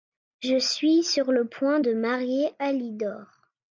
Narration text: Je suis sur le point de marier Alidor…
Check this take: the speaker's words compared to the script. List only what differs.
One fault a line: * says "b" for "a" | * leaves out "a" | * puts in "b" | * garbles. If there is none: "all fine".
all fine